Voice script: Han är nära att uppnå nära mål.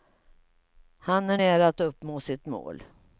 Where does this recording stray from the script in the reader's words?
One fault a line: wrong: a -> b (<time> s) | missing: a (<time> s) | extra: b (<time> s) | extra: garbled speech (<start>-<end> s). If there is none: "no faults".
wrong: nära -> sitt (2.2 s)